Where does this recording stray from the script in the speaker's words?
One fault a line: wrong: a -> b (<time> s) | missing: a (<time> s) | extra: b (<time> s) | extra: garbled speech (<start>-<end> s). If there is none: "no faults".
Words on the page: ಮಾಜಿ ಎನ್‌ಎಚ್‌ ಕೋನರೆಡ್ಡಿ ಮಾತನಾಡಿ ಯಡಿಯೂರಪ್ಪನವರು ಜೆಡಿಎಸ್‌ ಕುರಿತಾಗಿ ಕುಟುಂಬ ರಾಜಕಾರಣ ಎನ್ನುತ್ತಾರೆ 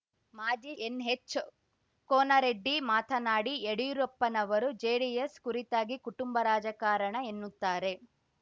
no faults